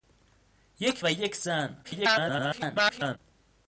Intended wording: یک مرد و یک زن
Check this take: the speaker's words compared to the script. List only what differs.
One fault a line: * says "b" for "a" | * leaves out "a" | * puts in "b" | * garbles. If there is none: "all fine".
* leaves out "مرد"
* garbles